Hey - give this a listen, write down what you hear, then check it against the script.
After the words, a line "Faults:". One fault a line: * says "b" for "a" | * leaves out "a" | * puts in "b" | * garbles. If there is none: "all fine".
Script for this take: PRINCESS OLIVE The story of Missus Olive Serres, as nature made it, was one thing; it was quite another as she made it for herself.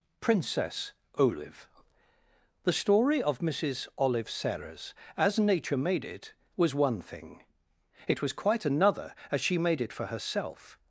PRINCESS OLIVE The story of Missus Olive Serres, as nature made it, was one thing; it was quite another as she made it for herself.
Faults:
all fine